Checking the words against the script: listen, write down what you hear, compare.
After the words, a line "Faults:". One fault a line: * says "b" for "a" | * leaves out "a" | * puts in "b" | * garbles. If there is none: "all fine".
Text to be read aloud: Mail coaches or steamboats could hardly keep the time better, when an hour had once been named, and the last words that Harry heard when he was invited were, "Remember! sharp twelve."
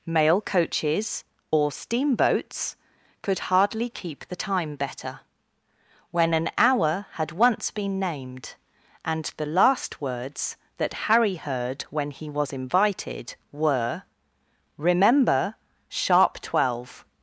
Mail coaches or steamboats could hardly keep the time better, when an hour had once been named, and the last words that Harry heard when he was invited were, "Remember! sharp twelve."
Faults:
all fine